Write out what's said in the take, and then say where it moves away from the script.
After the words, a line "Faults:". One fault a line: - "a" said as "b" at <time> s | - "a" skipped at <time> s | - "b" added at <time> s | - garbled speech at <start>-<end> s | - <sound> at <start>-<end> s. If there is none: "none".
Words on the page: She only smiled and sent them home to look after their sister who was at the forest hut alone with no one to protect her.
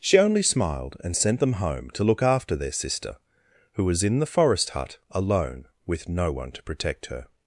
She only smiled and sent them home to look after their sister who was in the forest hut alone with no one to protect her.
Faults:
- "at" said as "in" at 4.0 s